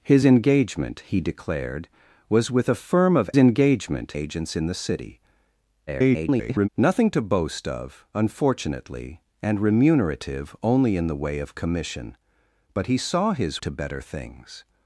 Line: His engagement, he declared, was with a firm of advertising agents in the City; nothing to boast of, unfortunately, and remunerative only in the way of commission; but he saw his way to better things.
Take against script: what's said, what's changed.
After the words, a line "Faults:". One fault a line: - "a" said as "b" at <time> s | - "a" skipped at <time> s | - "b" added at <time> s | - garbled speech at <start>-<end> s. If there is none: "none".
His engagement, he declared, was with a firm of engagement agents in the City; [garbled] nothing to boast of, unfortunately, and remunerative only in the way of commission; but he saw his to better things.
Faults:
- "advertising" said as "engagement" at 3.4 s
- garbled speech at 5.9-6.7 s
- "way" skipped at 13.6 s